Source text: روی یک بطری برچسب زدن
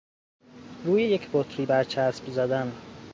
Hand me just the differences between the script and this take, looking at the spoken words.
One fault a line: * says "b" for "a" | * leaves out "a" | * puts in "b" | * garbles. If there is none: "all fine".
all fine